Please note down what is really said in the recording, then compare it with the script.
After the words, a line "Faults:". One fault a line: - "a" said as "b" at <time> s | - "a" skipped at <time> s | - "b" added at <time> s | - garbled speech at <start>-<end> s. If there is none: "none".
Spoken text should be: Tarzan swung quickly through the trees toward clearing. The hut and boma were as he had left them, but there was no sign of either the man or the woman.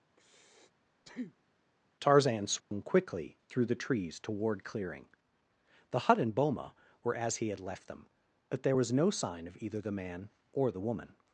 Tarzan swung quickly through the trees toward clearing. The hut and boma were as he had left them, but there was no sign of either the man or the woman.
Faults:
none